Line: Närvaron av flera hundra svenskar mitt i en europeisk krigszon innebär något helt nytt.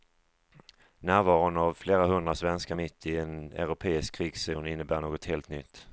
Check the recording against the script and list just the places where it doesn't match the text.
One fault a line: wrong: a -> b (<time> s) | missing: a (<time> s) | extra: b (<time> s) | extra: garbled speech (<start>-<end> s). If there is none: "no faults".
no faults